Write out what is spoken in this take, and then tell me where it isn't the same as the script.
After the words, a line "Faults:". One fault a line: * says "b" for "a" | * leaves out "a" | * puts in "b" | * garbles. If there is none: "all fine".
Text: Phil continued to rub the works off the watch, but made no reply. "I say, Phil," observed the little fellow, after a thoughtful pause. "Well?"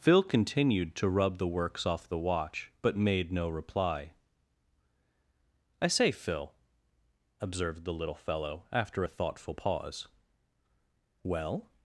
Phil continued to rub the works off the watch, but made no reply. "I say, Phil," observed the little fellow, after a thoughtful pause. "Well?"
Faults:
all fine